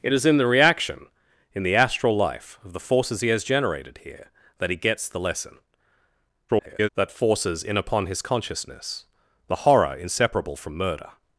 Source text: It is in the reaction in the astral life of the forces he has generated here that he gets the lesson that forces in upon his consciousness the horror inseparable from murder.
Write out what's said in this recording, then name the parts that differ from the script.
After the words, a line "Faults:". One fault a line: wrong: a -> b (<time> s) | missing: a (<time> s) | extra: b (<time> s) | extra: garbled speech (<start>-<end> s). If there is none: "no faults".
It is in the reaction in the astral life of the forces he has generated here that he gets the lesson [garbled] that forces in upon his consciousness the horror inseparable from murder.
Faults:
extra: garbled speech (6.5-6.9 s)